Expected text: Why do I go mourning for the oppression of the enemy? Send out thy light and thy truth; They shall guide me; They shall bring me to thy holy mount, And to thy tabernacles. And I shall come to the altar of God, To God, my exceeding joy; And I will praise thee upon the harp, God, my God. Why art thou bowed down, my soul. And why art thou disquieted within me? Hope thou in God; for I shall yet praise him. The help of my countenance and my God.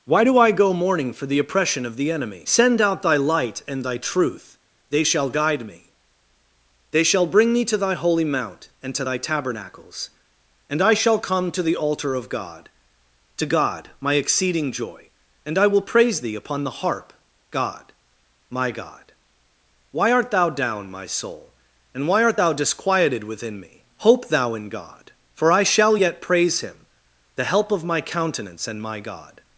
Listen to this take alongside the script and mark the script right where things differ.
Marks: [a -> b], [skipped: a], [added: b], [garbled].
Why do I go mourning for the oppression of the enemy? Send out thy light and thy truth; They shall guide me; They shall bring me to thy holy mount, And to thy tabernacles. And I shall come to the altar of God, To God, my exceeding joy; And I will praise thee upon the harp, God, my God. Why art thou [skipped: bowed] down, my soul. And why art thou disquieted within me? Hope thou in God; for I shall yet praise him. The help of my countenance and my God.